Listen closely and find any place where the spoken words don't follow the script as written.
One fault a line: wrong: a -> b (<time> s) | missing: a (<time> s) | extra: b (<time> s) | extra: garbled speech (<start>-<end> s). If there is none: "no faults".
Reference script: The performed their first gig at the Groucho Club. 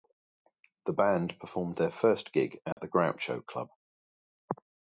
extra: band (0.9 s)